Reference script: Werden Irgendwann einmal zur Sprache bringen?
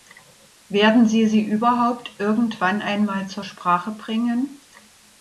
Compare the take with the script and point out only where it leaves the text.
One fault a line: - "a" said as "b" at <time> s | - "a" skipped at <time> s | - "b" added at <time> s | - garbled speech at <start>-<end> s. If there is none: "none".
- "Sie sie überhaupt" added at 1.1 s